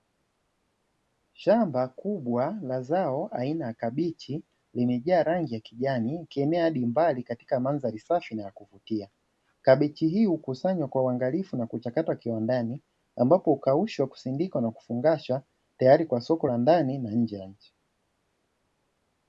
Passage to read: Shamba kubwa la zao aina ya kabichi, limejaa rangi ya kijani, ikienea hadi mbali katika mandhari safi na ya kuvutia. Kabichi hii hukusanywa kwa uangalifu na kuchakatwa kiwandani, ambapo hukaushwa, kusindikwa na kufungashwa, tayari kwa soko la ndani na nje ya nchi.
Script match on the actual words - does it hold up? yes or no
yes